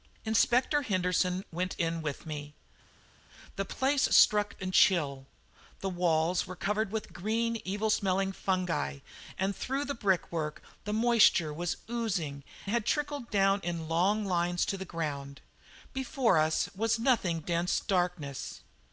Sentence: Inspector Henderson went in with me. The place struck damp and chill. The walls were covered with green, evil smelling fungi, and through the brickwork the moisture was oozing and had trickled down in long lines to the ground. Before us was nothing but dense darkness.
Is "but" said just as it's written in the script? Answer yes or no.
no